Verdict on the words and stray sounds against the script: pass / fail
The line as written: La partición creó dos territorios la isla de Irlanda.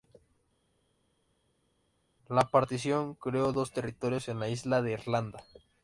fail